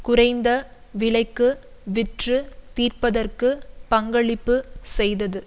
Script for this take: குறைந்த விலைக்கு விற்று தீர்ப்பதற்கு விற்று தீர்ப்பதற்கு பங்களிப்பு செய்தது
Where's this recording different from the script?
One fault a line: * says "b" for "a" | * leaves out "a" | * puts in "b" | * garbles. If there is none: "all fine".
* leaves out "விற்று தீர்ப்பதற்கு"